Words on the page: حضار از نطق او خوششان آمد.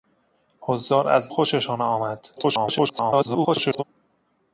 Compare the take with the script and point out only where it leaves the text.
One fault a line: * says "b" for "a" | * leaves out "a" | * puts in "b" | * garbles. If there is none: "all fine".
* leaves out "نطق او"
* garbles